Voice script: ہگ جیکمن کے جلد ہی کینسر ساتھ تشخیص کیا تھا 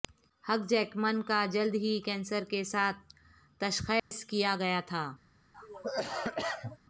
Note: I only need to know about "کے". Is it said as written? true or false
false